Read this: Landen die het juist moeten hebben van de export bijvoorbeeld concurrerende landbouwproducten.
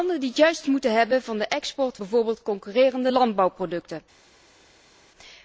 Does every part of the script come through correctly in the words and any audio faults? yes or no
yes